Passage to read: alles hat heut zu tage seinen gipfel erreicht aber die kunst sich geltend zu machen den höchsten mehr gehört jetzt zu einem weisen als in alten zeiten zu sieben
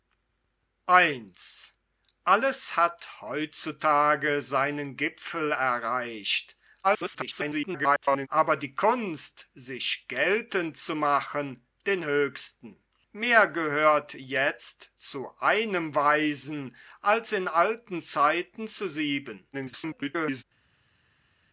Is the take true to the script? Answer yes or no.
no